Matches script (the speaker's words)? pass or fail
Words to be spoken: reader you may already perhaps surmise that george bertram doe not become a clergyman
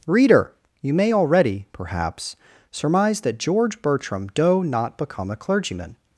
pass